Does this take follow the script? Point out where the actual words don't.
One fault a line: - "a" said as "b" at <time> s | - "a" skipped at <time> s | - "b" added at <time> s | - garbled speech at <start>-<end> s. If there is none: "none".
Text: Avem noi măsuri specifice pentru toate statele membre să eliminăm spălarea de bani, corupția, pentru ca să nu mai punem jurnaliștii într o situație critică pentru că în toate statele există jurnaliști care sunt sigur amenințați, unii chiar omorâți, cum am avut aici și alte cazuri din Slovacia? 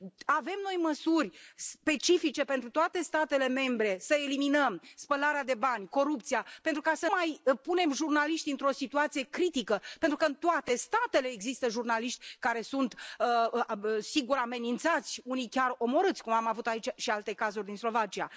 - "nu" skipped at 7.1 s